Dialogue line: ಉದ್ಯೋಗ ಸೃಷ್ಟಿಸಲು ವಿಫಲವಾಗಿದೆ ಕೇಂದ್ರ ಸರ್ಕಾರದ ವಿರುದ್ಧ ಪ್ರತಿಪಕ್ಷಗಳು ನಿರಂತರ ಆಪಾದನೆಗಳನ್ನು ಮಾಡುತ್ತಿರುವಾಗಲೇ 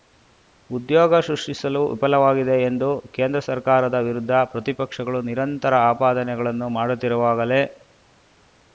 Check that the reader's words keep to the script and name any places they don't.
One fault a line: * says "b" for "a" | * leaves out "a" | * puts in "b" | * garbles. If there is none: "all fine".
* puts in "ಎಂದು"